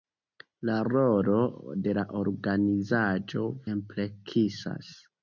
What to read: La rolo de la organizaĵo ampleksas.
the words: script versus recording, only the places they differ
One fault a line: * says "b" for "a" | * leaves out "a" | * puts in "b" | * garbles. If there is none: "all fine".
all fine